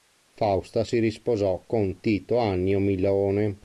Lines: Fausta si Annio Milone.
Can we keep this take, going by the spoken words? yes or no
no